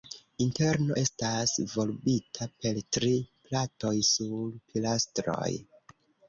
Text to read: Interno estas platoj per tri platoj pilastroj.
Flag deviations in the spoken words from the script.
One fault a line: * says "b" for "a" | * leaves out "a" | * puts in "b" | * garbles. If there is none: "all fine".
* says "volbita" for "platoj"
* puts in "sur"